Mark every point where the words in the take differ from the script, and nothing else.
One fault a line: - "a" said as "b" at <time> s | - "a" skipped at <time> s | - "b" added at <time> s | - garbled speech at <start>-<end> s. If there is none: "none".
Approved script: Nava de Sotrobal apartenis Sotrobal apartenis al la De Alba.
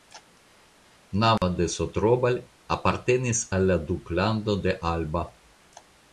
- "Sotrobal apartenis" skipped at 3.4 s
- "Duklando" added at 3.9 s